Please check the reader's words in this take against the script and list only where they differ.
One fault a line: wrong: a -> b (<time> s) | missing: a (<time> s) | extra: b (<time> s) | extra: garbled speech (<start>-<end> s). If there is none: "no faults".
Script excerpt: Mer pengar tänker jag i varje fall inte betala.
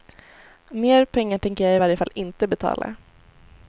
no faults